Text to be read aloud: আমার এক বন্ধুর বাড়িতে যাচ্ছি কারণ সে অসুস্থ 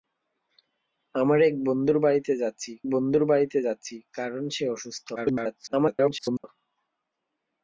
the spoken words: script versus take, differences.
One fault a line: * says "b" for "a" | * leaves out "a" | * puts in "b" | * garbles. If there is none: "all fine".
* puts in "বন্ধুর বাড়িতে যাচ্ছি"
* garbles